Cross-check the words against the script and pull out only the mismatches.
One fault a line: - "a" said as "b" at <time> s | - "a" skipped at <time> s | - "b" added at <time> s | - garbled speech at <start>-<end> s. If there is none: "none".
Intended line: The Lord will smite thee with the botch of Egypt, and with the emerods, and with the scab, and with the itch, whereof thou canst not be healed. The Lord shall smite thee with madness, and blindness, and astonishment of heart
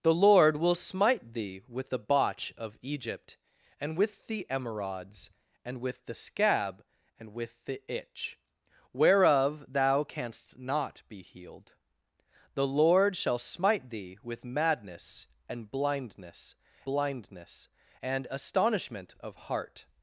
- "blindness" added at 16.8 s